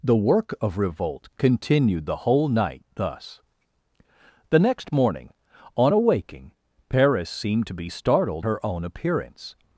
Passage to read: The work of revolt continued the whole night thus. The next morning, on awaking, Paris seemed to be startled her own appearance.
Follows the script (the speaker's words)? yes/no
yes